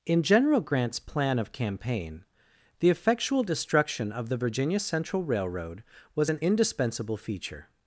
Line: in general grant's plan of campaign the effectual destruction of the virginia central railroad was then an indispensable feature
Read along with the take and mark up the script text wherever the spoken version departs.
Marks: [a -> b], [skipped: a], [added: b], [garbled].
in general grant's plan of campaign the effectual destruction of the virginia central railroad was [skipped: then] an indispensable feature